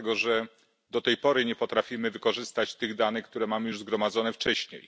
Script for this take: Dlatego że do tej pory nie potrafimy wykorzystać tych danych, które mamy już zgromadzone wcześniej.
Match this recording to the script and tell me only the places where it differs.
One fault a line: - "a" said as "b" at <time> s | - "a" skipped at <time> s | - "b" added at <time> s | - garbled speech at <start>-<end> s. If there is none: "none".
none